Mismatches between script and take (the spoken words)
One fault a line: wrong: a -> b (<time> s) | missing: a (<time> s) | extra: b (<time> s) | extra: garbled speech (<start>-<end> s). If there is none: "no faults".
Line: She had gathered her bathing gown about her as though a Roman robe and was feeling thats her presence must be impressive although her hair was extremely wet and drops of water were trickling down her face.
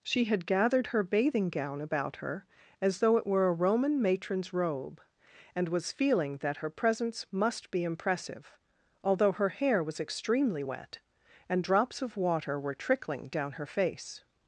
extra: it were (3.2 s)
extra: matron's (4.0 s)
wrong: thats -> that (6.4 s)